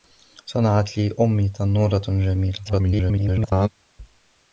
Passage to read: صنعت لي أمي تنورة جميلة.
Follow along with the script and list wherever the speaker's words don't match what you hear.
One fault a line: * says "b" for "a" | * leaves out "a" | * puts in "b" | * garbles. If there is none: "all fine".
* garbles